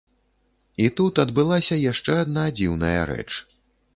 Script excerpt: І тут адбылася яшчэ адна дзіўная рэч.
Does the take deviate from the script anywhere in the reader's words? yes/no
no